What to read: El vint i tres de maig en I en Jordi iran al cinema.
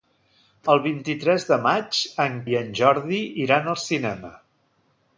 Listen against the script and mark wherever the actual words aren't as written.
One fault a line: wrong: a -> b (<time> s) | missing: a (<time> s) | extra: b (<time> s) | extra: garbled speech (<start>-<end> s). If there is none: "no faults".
no faults